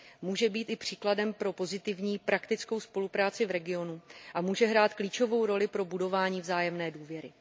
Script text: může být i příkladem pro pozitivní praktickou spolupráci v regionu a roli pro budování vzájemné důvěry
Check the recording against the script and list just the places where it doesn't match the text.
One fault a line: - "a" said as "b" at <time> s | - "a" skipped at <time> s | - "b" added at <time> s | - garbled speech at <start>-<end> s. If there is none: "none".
- "může hrát klíčovou" added at 4.4 s